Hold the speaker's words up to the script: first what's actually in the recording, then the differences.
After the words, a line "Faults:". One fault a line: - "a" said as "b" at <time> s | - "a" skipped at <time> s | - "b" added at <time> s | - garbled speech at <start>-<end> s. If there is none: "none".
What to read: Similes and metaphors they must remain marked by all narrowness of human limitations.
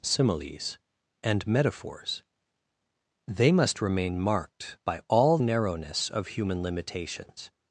Similes and metaphors they must remain marked by all narrowness of human limitations.
Faults:
none